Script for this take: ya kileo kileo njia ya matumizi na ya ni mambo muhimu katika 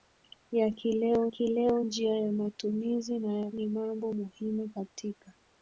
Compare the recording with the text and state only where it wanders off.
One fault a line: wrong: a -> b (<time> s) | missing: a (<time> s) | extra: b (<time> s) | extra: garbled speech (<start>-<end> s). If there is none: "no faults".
no faults